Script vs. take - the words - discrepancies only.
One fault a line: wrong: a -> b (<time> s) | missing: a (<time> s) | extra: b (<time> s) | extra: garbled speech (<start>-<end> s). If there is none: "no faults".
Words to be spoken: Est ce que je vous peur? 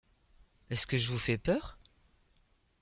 extra: fais (1.2 s)